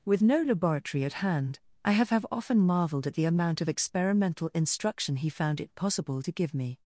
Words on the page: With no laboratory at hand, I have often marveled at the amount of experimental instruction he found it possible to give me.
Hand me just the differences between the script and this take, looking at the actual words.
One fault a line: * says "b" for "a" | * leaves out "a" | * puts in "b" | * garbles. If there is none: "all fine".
* puts in "have"